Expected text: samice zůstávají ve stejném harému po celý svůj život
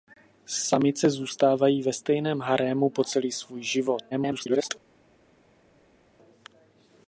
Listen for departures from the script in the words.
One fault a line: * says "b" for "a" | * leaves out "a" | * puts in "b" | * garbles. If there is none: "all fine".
* garbles